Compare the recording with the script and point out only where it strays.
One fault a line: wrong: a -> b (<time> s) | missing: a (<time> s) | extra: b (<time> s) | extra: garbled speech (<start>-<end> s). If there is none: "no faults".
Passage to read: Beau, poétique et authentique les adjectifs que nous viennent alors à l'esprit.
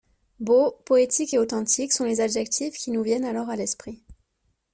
extra: sont (1.9 s)
wrong: que -> qui (2.8 s)